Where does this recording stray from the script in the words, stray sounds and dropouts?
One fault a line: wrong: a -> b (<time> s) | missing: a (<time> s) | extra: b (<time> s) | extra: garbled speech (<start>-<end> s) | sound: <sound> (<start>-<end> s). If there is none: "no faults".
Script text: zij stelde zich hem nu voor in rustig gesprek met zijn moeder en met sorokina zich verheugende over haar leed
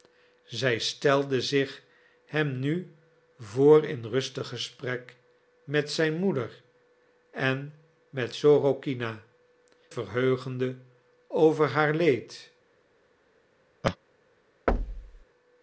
missing: zich (9.2 s)
sound: laugh (13.8-14.0 s)
sound: thud (14.7-15.2 s)